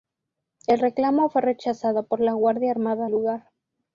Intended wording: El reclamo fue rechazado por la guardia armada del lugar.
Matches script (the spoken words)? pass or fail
fail